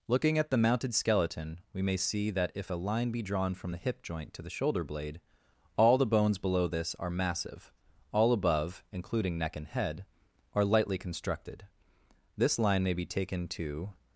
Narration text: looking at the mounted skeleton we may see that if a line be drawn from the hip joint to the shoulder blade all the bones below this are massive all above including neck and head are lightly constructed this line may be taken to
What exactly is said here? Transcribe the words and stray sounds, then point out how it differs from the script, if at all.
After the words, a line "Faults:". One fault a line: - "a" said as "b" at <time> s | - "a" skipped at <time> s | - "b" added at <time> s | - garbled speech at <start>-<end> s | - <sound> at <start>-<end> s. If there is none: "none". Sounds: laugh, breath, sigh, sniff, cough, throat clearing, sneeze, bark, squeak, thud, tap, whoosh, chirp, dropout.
looking at the mounted skeleton we may see that if a line be drawn from the hip joint to the shoulder blade all the bones below this are massive all above including neck and head are lightly constructed this line may be taken to
Faults:
none